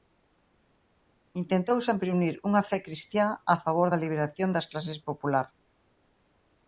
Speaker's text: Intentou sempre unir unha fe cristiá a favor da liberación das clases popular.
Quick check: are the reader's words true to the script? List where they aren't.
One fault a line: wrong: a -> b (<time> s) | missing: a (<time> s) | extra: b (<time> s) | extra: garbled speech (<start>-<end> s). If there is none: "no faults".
no faults